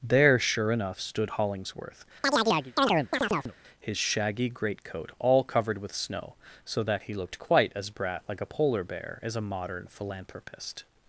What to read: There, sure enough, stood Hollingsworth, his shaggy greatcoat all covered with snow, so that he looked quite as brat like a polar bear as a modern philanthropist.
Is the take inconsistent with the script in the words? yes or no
no